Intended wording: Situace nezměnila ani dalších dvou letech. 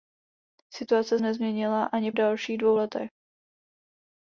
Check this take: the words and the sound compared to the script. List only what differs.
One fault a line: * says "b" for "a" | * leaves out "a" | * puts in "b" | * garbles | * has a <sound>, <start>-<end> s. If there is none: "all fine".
all fine